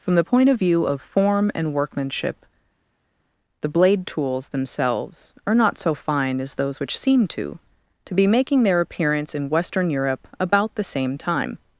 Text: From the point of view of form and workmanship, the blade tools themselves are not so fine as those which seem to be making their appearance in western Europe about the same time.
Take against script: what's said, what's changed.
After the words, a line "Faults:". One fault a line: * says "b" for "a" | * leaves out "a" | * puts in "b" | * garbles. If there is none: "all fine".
From the point of view of form and workmanship, the blade tools themselves are not so fine as those which seem to to be making their appearance in western Europe about the same time.
Faults:
* puts in "to"